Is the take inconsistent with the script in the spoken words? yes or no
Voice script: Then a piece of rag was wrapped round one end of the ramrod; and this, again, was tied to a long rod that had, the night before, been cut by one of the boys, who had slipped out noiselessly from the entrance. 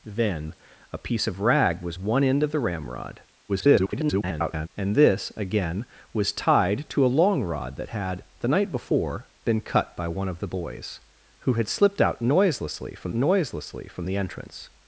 yes